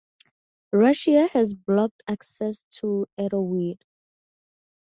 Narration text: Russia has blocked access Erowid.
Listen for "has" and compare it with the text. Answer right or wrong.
right